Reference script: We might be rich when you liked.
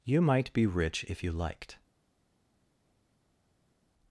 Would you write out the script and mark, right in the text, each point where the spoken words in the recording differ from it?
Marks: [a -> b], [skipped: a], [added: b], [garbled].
[We -> You] might be rich [when -> if] you liked.